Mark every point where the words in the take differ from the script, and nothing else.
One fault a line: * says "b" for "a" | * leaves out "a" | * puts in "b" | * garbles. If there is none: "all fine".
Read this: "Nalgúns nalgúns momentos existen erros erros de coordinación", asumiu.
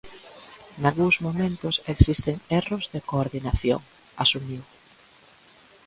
* leaves out "nalgúns"
* leaves out "erros"